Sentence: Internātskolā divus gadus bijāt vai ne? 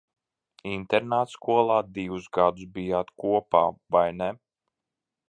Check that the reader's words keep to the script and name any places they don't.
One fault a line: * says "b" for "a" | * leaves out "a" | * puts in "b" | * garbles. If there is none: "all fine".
* puts in "kopā"